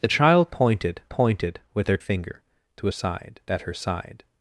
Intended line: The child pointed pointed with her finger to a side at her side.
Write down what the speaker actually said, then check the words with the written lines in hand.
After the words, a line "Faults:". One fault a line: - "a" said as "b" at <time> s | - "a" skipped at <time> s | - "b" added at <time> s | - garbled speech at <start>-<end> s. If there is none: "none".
The child pointed pointed with her finger to a side at her side.
Faults:
none